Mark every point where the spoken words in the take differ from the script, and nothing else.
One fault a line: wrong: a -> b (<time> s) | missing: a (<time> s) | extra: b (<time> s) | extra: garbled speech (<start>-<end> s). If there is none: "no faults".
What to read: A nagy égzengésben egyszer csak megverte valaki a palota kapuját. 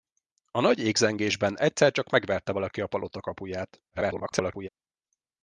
extra: garbled speech (3.9-4.7 s)